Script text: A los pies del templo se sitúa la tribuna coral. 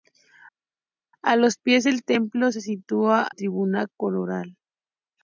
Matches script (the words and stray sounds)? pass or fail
fail